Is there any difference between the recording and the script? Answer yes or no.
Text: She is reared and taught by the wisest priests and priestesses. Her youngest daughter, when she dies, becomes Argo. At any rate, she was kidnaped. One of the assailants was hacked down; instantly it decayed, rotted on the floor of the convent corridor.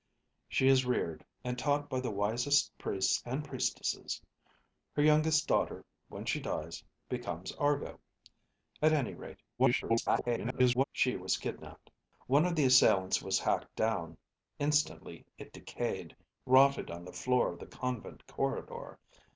yes